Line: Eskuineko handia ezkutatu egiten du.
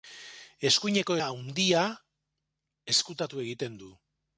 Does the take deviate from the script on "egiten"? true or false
false